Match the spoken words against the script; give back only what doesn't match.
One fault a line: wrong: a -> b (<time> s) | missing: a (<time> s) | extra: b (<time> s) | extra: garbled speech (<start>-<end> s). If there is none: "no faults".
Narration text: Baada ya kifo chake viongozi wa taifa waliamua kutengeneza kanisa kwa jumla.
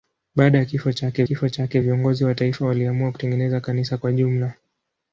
extra: kifo chake (1.2 s)